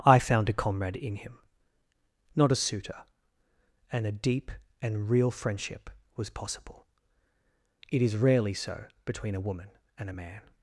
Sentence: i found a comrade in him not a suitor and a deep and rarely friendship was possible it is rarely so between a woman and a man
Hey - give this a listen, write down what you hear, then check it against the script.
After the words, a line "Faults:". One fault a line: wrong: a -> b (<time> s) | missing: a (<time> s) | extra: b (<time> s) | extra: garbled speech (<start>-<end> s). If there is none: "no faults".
i found a comrade in him not a suitor and a deep and real friendship was possible it is rarely so between a woman and a man
Faults:
wrong: rarely -> real (5.1 s)